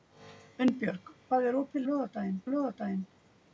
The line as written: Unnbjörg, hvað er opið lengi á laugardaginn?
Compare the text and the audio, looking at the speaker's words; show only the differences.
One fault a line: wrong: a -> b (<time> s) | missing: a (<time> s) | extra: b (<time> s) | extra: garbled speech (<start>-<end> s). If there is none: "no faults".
wrong: lengi -> laugardaginn (1.9 s)